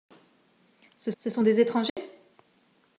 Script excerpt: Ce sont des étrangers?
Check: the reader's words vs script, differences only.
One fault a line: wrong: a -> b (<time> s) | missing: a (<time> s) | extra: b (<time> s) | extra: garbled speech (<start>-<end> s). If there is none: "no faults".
extra: ce (1.2 s)